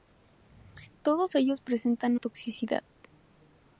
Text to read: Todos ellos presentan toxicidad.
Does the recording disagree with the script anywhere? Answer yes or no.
no